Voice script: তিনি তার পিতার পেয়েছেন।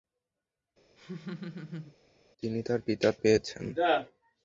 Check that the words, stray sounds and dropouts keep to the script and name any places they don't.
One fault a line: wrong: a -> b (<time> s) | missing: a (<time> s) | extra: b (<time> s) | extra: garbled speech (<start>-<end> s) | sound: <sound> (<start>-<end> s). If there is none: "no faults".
sound: laugh (1.0-2.0 s)